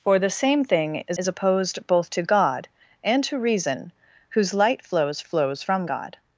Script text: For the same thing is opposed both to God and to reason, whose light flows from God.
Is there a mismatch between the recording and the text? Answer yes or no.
yes